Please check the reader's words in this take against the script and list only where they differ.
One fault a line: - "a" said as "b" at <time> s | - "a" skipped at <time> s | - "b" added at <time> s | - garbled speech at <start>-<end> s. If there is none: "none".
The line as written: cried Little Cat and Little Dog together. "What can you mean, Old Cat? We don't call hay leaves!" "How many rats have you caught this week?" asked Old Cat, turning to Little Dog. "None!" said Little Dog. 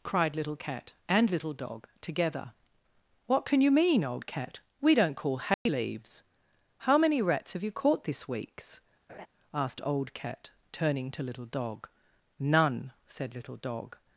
- "week" said as "weeks" at 8.3 s